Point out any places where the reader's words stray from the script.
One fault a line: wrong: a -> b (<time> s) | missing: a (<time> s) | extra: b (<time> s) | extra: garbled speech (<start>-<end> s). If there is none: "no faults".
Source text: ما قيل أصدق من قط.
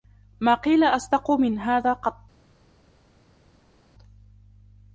extra: هذا (1.6 s)